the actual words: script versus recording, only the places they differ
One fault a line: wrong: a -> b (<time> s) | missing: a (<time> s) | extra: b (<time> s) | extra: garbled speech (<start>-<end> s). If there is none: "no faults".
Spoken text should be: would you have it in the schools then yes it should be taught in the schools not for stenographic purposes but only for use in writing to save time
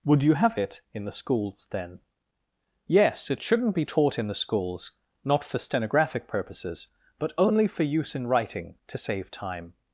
wrong: should -> shouldn't (3.4 s)